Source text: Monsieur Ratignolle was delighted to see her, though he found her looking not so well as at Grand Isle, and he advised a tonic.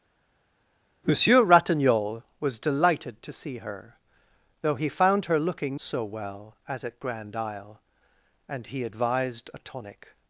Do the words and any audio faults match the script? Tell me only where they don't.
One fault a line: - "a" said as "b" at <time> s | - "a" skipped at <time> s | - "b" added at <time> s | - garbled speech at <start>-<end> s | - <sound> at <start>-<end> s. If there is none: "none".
- "not" skipped at 5.8 s